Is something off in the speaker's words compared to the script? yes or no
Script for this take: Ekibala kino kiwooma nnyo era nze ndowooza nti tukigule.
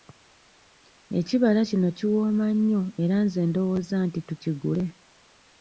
no